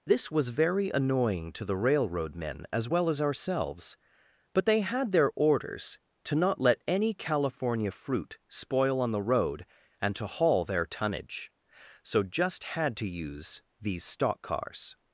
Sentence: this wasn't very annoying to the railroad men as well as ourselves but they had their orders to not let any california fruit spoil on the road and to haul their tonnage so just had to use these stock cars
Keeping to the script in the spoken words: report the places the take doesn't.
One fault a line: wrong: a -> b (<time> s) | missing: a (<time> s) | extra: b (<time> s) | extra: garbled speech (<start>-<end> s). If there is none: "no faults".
wrong: wasn't -> was (0.3 s)